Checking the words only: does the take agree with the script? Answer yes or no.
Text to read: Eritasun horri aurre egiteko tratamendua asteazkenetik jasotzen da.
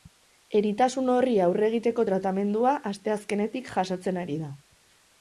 no